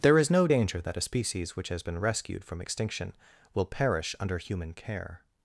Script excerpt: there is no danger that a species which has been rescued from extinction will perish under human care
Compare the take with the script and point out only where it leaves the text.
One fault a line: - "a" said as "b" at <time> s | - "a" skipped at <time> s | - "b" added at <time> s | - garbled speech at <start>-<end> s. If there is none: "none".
none